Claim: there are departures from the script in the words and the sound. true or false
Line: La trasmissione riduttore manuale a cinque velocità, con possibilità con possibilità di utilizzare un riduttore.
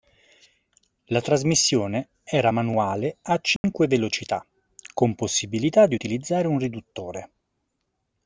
true